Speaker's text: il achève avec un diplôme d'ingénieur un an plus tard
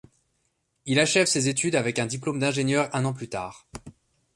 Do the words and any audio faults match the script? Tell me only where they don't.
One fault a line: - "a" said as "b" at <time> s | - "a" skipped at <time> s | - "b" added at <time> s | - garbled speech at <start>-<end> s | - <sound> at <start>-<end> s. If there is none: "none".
- "ses études" added at 1.3 s